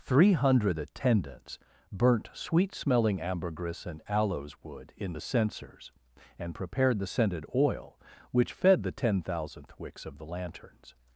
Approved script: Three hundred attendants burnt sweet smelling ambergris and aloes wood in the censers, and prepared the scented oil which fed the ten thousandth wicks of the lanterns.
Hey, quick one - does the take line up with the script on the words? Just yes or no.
yes